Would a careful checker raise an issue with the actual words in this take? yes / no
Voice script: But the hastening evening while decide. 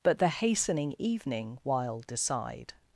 no